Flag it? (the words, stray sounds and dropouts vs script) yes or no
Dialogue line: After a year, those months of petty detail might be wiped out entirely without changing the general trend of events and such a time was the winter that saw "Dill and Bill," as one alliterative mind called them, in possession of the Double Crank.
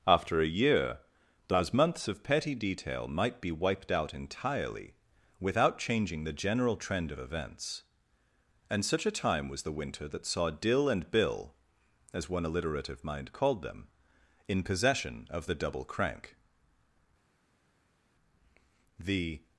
yes